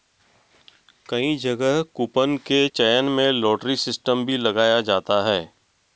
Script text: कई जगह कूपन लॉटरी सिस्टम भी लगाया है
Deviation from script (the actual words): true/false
true